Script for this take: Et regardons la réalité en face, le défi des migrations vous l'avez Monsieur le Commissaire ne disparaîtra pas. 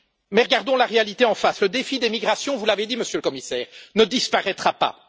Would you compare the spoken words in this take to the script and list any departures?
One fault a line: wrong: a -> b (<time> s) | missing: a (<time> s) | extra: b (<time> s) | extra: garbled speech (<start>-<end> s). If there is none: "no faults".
wrong: Et -> Mais (0.3 s)
extra: dit (2.9 s)